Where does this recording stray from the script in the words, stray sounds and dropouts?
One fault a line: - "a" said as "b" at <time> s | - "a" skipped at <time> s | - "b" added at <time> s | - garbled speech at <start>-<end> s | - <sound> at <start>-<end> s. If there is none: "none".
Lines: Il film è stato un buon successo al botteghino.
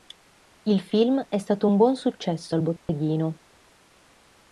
- dropout at 2.8-2.9 s